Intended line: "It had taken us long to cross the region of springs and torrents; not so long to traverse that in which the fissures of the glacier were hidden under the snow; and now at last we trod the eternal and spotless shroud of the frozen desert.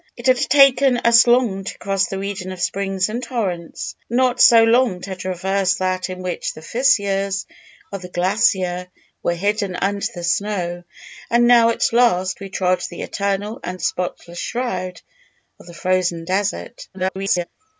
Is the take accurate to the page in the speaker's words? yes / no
no